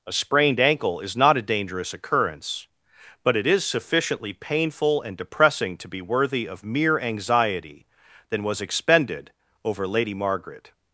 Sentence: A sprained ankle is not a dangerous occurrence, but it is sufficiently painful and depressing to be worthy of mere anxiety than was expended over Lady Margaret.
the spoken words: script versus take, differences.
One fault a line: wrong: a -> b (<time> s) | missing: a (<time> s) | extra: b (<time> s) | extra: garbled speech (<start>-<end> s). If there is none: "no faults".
no faults